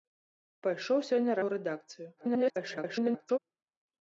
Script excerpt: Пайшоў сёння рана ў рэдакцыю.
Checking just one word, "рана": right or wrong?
wrong